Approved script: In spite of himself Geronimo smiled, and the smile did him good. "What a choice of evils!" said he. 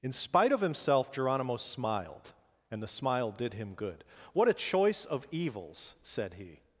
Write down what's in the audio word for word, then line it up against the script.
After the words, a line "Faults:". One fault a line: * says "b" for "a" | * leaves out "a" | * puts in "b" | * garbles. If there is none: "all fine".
In spite of himself Geronimo smiled, and the smile did him good. "What a choice of evils!" said he.
Faults:
all fine